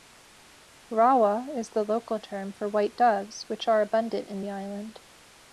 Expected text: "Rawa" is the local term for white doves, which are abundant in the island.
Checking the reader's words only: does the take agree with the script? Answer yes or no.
yes